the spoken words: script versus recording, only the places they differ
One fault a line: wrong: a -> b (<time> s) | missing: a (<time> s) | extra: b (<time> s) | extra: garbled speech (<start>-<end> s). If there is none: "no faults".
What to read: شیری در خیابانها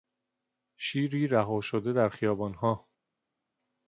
extra: رها شده (1.3 s)